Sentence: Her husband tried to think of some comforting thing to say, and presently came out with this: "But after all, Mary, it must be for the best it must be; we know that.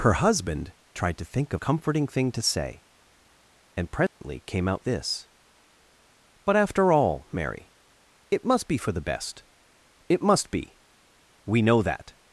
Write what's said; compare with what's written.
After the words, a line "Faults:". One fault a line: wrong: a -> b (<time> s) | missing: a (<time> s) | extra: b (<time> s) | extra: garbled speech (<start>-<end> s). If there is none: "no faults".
Her husband tried to think of comforting thing to say, and presently came out this: "But after all, Mary, it must be for the best it must be; we know that.
Faults:
missing: some (1.6 s)
missing: with (4.8 s)